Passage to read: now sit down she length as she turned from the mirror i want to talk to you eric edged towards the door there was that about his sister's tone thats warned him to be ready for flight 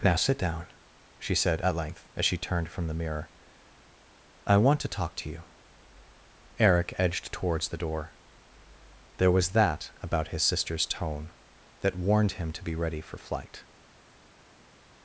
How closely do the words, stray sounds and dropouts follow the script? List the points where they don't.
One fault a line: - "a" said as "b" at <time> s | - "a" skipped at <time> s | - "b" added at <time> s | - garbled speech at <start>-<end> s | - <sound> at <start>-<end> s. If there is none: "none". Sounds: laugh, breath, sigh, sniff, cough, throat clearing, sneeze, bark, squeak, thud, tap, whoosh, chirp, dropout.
- "said at" added at 1.4 s
- "thats" said as "that" at 11.8 s